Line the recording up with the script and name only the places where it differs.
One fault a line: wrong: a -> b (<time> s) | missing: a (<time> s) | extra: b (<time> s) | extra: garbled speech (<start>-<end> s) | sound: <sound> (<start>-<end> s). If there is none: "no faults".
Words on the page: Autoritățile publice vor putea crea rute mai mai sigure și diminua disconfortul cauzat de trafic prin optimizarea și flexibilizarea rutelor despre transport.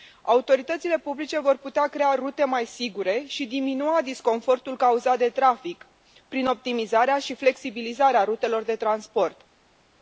missing: mai (2.6 s)
wrong: despre -> de (8.6 s)